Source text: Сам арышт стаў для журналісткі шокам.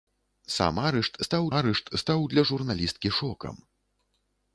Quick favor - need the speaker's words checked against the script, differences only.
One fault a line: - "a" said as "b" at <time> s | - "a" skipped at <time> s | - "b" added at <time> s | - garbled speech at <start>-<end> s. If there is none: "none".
- "арышт стаў" added at 1.6 s